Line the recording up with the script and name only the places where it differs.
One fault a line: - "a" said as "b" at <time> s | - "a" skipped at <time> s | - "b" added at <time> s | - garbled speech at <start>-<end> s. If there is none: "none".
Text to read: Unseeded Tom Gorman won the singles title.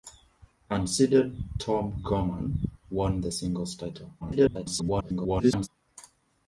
- garbled speech at 4.2-5.7 s